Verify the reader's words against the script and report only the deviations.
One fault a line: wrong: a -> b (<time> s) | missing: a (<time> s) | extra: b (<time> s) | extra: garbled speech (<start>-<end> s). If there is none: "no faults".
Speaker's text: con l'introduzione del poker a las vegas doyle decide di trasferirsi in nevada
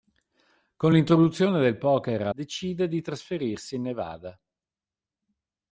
missing: las vegas doyle (2.3 s)